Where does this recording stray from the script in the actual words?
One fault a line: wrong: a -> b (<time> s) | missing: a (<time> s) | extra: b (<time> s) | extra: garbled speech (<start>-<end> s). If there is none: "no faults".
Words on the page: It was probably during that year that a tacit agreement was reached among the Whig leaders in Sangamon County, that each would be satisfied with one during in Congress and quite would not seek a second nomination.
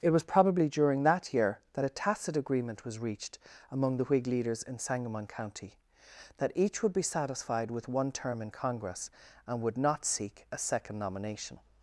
wrong: during -> term (8.1 s)
missing: quite (9.6 s)